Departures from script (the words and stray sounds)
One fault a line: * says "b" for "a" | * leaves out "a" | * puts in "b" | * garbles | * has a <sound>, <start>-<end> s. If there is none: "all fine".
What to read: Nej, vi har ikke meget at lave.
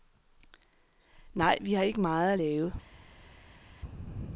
all fine